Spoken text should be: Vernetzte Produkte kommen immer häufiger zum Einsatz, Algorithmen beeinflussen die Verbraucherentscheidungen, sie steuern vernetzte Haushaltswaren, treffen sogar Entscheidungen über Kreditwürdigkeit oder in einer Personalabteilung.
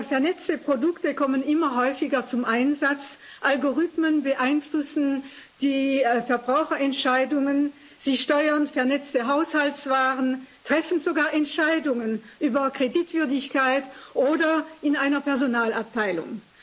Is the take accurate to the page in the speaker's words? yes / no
yes